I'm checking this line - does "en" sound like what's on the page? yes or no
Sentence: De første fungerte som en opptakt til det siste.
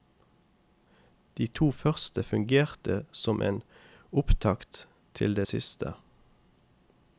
yes